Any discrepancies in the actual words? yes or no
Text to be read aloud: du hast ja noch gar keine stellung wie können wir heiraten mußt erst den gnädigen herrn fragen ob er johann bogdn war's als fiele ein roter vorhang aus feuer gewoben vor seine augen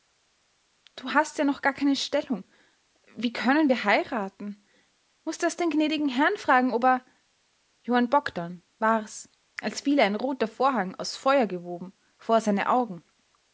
no